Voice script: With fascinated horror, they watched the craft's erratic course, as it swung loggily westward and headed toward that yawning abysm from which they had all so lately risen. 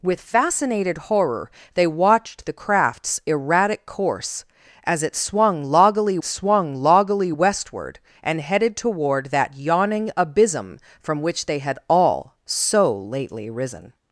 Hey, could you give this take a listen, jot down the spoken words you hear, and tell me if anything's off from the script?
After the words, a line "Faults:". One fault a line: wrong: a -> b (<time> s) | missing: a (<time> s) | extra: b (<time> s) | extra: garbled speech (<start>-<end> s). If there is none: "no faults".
With fascinated horror, they watched the craft's erratic course, as it swung loggily swung loggily westward and headed toward that yawning abysm from which they had all so lately risen.
Faults:
extra: swung loggily (6.2 s)